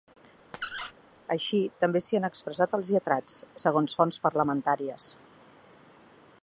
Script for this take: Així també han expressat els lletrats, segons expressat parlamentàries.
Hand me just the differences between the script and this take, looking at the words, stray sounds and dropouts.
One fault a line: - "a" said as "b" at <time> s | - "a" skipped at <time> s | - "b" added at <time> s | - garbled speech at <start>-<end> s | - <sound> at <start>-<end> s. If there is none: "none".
- squeak at 0.5-0.9 s
- "s'hi" added at 2.0 s
- "expressat" said as "fonts" at 4.0 s